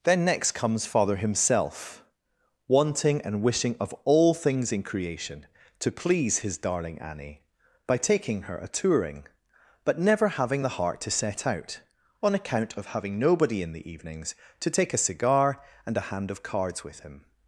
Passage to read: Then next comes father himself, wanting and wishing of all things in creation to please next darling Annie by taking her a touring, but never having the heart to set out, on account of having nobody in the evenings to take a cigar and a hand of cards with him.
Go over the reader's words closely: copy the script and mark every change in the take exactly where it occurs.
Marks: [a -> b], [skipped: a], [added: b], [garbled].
Then next comes father himself, wanting and wishing of all things in creation to please [next -> his] darling Annie by taking her a touring, but never having the heart to set out, on account of having nobody in the evenings to take a cigar and a hand of cards with him.